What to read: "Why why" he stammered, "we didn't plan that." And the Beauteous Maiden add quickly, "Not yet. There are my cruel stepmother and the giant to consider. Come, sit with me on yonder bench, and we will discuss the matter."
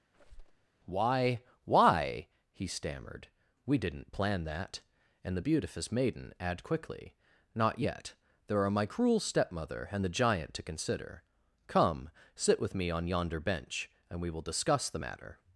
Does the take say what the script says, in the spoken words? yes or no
yes